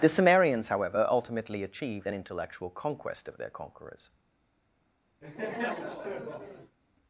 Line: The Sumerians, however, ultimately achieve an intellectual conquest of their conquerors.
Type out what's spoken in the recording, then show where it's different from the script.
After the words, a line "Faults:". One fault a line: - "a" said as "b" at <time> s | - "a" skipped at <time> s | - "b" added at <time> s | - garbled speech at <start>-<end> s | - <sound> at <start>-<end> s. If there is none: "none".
The Sumerians, however, ultimately achieved an intellectual conquest of their conquerors.
Faults:
- "achieve" said as "achieved" at 1.6 s
- laugh at 5.2-6.8 s